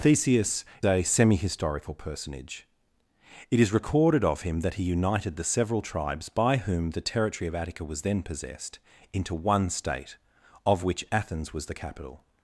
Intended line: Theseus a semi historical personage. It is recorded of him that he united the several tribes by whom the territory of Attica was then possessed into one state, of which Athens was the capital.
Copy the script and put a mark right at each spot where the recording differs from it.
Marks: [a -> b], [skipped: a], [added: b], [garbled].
Theseus a semi historical personage. It is recorded of him that he united the several tribes by whom the territory of Attica was then possessed into one state, of which Athens was the capital.